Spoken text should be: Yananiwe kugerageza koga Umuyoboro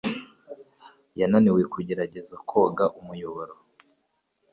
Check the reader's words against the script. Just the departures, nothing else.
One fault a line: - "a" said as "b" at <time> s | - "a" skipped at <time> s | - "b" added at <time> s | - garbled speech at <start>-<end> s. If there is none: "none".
none